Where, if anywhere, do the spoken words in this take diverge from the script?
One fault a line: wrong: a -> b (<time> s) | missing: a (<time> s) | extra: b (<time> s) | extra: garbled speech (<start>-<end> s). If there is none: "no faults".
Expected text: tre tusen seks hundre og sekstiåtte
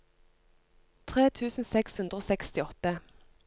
no faults